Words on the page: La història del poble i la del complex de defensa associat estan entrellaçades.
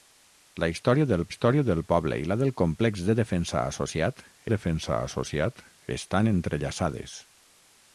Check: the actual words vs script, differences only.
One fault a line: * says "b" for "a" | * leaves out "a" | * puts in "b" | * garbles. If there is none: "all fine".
* puts in "història del"
* puts in "defensa associat"